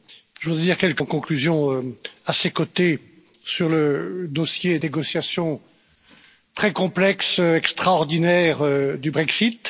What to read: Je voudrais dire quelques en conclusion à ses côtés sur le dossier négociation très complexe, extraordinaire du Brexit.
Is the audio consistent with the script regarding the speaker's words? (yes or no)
yes